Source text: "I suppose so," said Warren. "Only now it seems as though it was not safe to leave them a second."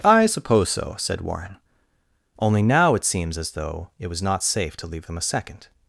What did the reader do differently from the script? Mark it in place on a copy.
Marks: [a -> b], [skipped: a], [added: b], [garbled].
"I suppose so," said Warren. "Only now it seems as though it was not safe to leave them a second."